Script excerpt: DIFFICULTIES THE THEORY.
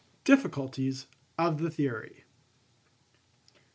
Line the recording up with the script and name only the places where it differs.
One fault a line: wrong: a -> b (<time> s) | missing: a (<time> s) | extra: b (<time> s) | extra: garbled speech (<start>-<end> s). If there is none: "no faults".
extra: OF (1.4 s)